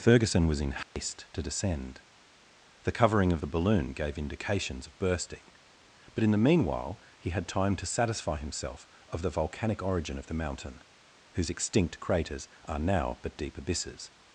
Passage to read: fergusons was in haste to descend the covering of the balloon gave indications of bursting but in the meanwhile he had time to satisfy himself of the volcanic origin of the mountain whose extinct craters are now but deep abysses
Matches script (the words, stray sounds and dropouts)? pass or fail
fail